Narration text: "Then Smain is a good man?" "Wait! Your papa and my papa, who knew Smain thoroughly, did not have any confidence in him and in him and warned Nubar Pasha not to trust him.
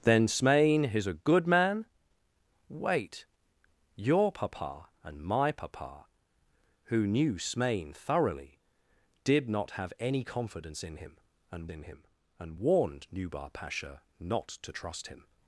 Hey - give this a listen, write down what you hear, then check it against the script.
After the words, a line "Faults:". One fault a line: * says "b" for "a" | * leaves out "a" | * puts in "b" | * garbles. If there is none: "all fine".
"Then Smain is a good man?" "Wait! Your papa and my papa, who knew Smain thoroughly, did not have any confidence in him and in him and warned Nubar Pasha not to trust him.
Faults:
all fine